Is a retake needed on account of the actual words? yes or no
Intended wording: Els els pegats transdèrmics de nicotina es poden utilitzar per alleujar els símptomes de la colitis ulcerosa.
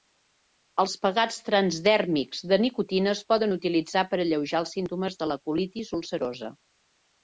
yes